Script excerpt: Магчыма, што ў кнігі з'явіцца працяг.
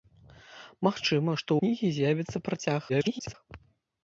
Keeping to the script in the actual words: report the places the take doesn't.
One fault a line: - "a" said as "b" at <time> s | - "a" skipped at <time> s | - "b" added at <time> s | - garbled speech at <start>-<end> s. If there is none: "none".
- "ў" skipped at 1.5 s
- garbled speech at 2.9-3.3 s